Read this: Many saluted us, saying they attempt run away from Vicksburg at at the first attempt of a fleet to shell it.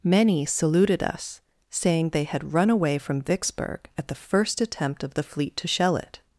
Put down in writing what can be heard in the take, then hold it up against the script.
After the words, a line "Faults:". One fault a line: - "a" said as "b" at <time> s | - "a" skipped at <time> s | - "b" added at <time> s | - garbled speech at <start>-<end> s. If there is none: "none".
Many saluted us, saying they had run away from Vicksburg at the first attempt of the fleet to shell it.
Faults:
- "attempt" said as "had" at 2.2 s
- "at" skipped at 4.1 s
- "a" said as "the" at 5.1 s